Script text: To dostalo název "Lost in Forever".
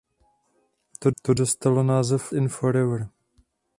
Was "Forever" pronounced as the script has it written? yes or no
yes